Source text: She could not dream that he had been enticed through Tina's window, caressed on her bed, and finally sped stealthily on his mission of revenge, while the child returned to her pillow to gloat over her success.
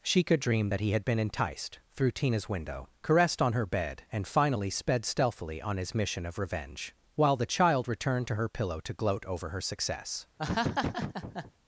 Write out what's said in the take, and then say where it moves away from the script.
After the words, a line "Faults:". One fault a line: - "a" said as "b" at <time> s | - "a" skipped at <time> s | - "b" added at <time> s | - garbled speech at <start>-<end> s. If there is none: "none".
She could dream that he had been enticed through Tina's window, caressed on her bed, and finally sped stealthily on his mission of revenge, while the child returned to her pillow to gloat over her success.
Faults:
- "not" skipped at 0.4 s